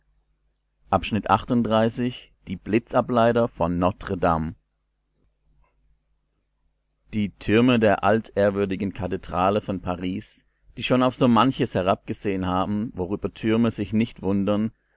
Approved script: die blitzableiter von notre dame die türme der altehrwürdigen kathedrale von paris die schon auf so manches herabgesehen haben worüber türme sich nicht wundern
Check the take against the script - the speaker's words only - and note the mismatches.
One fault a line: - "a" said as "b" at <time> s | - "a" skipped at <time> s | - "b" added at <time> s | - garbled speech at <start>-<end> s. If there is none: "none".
none